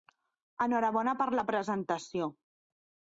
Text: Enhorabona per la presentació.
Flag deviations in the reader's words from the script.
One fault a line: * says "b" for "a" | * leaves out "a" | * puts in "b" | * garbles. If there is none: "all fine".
all fine